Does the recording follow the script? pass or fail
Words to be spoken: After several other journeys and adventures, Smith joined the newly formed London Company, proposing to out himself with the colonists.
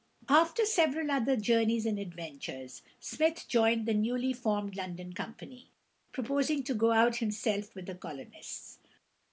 fail